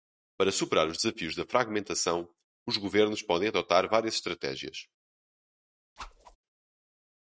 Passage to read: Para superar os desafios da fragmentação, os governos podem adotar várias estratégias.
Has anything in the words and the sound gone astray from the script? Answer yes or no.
yes